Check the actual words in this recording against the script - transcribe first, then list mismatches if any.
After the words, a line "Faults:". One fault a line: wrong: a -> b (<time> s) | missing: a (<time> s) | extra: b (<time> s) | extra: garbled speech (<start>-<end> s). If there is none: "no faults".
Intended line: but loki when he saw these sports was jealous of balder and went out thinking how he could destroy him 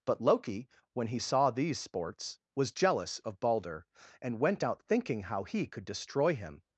but loki when he saw these sports was jealous of balder and went out thinking how he could destroy him
Faults:
no faults